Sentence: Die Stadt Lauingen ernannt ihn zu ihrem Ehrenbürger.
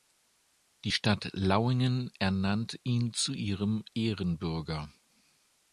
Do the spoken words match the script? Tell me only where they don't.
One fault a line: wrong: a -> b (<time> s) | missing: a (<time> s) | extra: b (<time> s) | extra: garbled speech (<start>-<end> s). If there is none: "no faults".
no faults